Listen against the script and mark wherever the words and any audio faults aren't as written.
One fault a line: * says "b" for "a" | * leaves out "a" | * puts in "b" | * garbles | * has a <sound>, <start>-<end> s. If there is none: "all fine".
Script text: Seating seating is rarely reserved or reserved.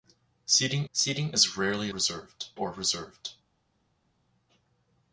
all fine